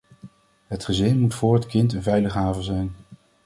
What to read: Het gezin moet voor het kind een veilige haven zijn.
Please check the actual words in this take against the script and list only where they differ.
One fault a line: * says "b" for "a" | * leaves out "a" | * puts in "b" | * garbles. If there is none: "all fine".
all fine